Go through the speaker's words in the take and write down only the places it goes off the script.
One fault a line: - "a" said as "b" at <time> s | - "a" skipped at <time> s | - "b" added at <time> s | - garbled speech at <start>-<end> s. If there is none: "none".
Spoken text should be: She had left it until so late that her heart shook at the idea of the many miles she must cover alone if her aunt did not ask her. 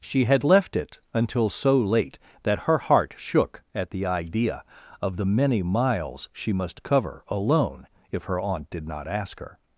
none